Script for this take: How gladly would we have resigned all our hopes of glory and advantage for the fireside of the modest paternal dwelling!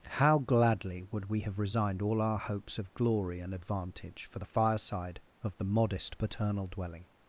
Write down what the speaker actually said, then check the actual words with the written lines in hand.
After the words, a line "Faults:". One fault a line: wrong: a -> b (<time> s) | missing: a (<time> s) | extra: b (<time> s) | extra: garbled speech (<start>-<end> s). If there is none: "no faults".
How gladly would we have resigned all our hopes of glory and advantage for the fireside of the modest paternal dwelling!
Faults:
no faults